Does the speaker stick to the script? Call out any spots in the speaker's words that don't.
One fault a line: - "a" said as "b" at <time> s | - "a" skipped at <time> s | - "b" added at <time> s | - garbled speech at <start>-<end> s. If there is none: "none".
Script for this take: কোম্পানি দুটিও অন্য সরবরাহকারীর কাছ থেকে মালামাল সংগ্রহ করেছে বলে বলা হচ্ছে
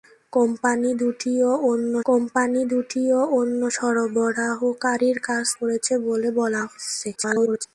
- "সরবরাহকারীর কাছ থেকে মালামাল সংগ্রহ" said as "কোম্পানি দুটিও অন্য সরবরাহকারীর কাছ" at 2.1 s
- garbled speech at 7.2-7.7 s